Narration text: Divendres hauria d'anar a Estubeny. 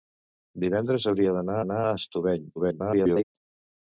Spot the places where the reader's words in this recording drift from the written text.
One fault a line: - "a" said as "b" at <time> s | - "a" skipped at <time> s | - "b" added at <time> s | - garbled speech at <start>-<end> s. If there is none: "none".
- "d'anar" added at 1.6 s
- garbled speech at 2.6-3.2 s